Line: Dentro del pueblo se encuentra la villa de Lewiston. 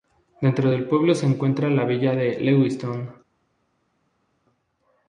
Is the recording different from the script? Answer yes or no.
no